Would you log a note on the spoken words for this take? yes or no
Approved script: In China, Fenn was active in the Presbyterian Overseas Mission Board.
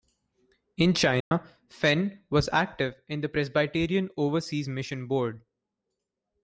no